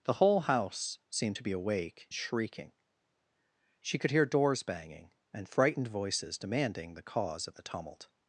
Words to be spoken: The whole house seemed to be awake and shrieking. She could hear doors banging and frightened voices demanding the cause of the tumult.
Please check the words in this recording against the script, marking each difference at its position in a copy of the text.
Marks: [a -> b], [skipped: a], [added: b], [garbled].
The whole house seemed to be awake [skipped: and] shrieking. She could hear doors banging and frightened voices demanding the cause of the tumult.